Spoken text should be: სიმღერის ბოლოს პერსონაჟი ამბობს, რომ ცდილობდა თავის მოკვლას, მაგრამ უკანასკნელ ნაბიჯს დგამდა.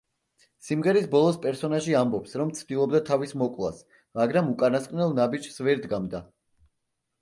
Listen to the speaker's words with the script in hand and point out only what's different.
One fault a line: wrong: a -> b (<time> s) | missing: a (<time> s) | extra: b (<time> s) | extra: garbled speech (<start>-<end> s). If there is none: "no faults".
extra: ვერ (5.7 s)